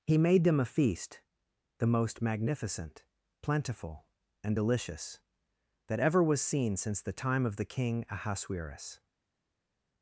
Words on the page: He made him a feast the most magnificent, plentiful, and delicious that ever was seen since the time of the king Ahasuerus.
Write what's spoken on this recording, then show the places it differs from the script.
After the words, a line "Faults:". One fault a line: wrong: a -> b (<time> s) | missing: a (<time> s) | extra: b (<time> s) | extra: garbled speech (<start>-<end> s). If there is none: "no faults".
He made them a feast the most magnificent, plentiful, and delicious that ever was seen since the time of the king Ahasuerus.
Faults:
wrong: him -> them (0.4 s)